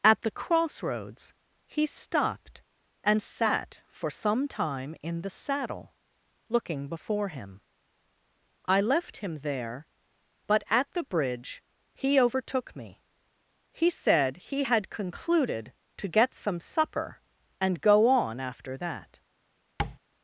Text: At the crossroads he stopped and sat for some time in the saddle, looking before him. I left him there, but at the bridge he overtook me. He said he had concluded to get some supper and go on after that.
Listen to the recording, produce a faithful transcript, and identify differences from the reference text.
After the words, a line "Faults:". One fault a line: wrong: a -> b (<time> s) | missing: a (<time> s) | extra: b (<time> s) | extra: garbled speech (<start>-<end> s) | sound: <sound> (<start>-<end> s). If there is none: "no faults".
At the crossroads he stopped and sat for some time in the saddle, looking before him. I left him there, but at the bridge he overtook me. He said he had concluded to get some supper and go on after that.
Faults:
sound: tap (19.8-20.0 s)